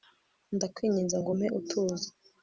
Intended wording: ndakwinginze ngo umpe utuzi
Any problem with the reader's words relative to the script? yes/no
no